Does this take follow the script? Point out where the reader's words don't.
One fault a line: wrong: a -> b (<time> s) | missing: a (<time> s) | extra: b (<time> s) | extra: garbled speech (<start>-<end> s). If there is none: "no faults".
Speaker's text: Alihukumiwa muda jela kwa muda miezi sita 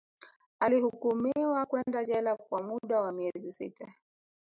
wrong: muda -> kwenda (1.6 s)
extra: wa (3.0 s)